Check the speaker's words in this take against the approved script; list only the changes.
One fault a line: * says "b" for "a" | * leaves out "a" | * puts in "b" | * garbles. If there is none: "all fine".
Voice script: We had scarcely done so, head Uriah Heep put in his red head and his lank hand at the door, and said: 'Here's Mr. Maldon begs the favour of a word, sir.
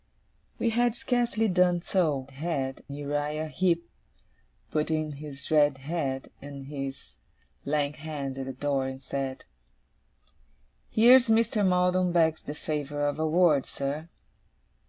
all fine